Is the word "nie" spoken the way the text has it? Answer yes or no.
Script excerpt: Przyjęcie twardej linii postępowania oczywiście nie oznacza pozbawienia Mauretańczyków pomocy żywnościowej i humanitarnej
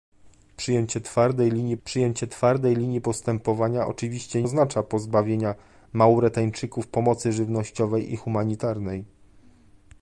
no